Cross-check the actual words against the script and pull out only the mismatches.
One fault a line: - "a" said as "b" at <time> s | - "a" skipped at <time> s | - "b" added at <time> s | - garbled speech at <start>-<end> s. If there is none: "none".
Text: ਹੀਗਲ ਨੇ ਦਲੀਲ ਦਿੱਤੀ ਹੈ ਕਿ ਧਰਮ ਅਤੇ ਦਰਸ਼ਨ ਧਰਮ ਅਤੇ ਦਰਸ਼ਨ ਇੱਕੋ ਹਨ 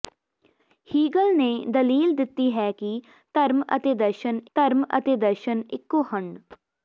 none